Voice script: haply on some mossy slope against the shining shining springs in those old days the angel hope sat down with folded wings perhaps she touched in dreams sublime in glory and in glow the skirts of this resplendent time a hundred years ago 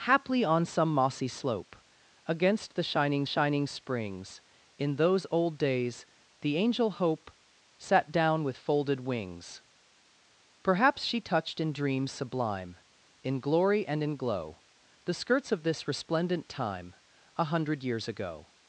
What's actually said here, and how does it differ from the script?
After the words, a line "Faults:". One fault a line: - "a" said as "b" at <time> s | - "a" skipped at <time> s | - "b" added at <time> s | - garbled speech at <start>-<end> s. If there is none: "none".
haply on some mossy slope against the shining shining springs in those old days the angel hope sat down with folded wings perhaps she touched in dreams sublime in glory and in glow the skirts of this resplendent time a hundred years ago
Faults:
none